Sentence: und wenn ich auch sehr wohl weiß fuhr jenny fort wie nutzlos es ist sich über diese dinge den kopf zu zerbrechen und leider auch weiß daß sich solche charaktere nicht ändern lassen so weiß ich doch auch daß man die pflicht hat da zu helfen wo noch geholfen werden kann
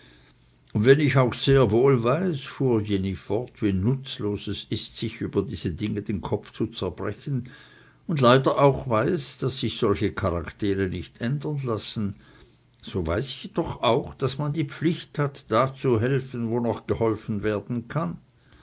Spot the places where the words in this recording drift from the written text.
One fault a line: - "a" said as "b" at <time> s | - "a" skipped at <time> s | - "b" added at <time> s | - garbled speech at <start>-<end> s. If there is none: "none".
none